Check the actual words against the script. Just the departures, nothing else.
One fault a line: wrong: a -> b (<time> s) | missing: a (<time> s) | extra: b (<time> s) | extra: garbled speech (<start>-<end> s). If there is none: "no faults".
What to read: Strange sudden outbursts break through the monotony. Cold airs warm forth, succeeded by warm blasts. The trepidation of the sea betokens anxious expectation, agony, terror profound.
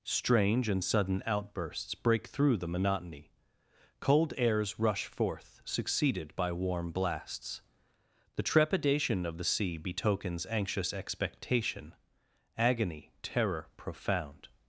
extra: and (0.7 s)
wrong: warm -> rush (4.8 s)